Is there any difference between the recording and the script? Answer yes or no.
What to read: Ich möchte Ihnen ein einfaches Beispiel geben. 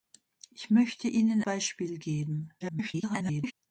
yes